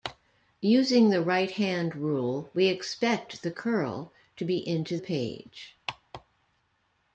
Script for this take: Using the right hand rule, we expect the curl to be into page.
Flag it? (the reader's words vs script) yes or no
no